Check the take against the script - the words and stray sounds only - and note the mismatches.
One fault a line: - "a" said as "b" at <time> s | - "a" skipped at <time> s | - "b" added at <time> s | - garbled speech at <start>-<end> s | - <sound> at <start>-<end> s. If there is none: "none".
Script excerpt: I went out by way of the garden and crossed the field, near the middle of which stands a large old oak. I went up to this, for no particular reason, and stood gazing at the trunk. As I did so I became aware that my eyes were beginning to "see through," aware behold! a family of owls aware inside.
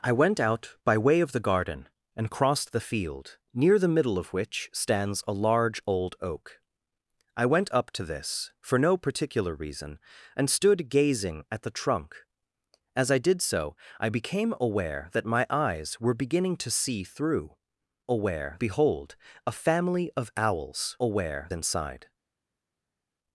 none